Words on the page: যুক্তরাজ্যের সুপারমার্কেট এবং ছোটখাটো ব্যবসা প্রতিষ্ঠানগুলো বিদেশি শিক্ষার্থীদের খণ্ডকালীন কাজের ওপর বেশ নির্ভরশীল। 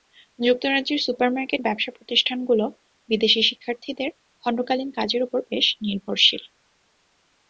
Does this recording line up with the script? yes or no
no